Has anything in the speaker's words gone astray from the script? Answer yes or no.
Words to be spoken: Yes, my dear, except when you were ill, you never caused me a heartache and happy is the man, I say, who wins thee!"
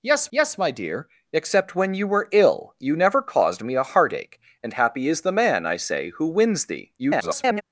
yes